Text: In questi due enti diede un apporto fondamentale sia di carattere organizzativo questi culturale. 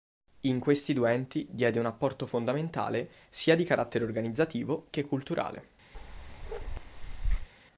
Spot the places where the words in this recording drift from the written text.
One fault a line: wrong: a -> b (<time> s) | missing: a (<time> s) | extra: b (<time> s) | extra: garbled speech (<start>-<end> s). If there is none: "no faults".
wrong: questi -> che (4.9 s)